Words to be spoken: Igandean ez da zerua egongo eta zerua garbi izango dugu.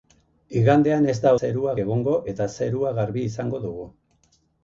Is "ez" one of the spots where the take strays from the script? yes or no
no